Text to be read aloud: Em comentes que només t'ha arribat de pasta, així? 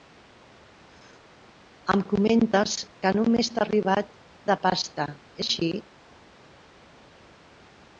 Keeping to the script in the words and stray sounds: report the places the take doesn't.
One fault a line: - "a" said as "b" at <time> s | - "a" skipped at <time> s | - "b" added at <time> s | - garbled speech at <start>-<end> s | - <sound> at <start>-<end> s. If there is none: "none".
none